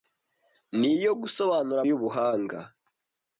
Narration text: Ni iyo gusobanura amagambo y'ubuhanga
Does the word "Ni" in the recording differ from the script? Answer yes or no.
no